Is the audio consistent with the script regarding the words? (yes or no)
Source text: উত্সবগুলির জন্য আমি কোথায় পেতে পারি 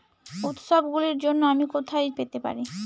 yes